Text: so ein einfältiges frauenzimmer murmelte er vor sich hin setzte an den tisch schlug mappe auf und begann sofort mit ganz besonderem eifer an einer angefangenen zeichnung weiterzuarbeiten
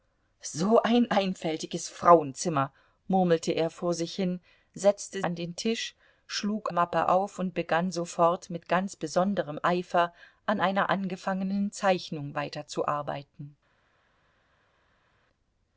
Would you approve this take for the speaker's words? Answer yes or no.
yes